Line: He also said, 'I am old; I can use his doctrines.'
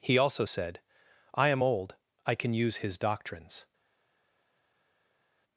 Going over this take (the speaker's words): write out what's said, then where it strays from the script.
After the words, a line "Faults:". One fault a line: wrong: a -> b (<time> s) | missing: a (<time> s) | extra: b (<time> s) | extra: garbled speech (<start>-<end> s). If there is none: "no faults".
He also said, 'I am old; I can use his doctrines.'
Faults:
no faults